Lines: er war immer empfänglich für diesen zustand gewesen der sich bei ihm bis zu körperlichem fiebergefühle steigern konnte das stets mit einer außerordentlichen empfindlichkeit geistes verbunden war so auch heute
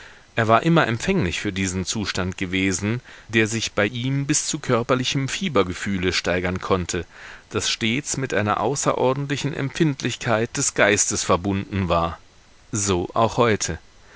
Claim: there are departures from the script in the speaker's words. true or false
true